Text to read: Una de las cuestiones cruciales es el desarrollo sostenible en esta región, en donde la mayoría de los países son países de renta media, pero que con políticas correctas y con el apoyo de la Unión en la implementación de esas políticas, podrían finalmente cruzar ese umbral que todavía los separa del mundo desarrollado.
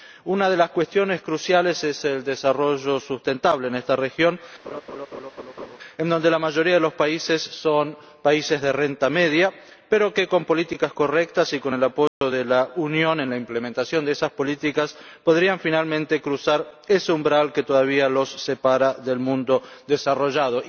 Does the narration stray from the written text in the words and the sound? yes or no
yes